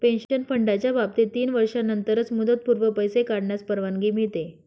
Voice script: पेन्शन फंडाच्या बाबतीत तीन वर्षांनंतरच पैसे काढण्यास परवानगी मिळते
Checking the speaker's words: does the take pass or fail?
fail